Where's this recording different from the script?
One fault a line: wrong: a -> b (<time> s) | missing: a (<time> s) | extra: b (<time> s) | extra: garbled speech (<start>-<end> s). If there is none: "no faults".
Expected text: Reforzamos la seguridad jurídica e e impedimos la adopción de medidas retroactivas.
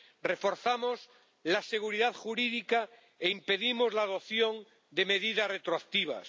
missing: e (3.3 s)